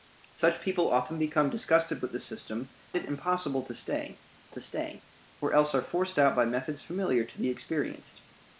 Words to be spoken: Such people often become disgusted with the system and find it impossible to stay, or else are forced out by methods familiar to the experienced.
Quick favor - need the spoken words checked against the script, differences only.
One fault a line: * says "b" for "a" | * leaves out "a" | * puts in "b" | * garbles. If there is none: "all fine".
* says "it impossible to stay" for "and find it impossible"